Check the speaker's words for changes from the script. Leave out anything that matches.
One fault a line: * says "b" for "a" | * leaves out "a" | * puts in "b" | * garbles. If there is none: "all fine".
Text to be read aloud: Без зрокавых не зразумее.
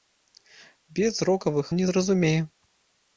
all fine